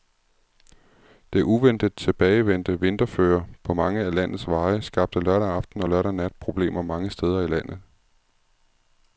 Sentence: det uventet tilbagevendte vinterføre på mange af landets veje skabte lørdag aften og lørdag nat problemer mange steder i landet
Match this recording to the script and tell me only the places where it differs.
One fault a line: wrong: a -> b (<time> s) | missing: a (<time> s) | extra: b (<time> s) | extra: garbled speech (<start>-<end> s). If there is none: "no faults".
no faults